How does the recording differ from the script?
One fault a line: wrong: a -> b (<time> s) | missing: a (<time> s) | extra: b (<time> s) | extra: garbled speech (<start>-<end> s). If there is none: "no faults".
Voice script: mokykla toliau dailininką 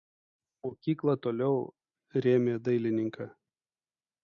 extra: rėmė (2.3 s)